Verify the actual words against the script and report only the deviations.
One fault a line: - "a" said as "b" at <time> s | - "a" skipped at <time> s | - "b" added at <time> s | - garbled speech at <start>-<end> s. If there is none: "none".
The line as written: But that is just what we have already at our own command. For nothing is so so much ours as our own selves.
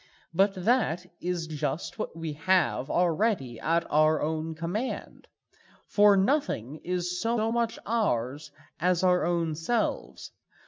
none